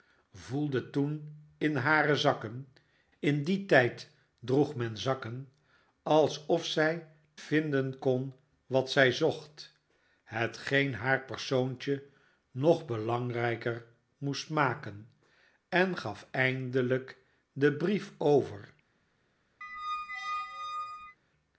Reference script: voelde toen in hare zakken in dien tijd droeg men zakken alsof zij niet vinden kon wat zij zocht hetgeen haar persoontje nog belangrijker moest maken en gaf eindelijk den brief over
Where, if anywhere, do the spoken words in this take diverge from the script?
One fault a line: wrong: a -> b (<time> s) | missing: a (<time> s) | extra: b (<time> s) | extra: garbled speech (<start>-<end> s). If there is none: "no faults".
missing: niet (7.1 s)